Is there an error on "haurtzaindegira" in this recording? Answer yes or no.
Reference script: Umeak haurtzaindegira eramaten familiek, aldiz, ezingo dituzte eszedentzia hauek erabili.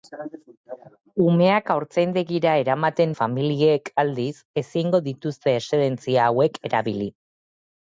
no